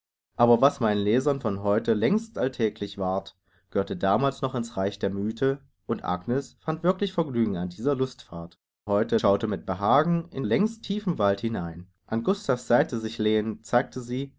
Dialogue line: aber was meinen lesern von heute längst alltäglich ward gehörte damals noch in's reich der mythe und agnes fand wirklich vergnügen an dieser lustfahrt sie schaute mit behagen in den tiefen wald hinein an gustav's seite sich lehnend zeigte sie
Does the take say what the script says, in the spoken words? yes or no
no